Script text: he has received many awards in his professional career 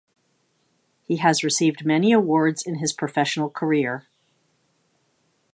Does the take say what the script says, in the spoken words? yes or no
yes